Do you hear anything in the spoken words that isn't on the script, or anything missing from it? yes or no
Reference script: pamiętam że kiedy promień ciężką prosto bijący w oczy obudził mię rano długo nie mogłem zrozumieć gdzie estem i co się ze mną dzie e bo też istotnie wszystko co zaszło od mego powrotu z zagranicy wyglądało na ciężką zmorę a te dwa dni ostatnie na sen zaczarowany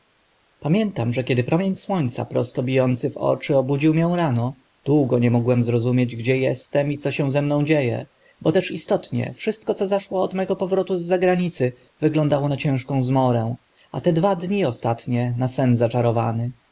yes